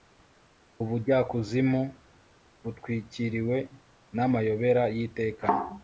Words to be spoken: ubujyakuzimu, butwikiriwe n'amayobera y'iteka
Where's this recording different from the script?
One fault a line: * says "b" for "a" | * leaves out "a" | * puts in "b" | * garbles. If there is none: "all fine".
all fine